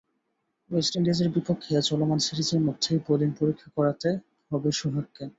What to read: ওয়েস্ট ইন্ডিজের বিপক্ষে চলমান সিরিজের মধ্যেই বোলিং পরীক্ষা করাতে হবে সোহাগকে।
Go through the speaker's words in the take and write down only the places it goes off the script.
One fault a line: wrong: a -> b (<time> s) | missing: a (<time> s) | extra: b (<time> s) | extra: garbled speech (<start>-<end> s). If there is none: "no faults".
no faults